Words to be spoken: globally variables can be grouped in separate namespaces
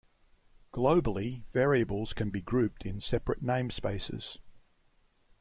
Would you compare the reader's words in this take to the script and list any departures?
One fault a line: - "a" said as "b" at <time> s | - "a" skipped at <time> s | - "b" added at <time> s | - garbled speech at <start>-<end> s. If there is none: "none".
none